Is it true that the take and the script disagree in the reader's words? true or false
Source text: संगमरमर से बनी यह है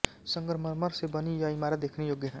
true